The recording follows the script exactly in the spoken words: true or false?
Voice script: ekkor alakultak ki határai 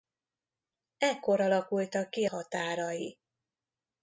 true